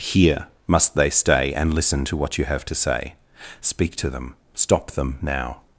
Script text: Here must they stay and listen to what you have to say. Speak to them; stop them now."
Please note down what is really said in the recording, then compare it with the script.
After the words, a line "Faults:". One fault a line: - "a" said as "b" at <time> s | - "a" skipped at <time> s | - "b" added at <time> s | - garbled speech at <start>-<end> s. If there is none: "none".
Here must they stay and listen to what you have to say. Speak to them; stop them now."
Faults:
none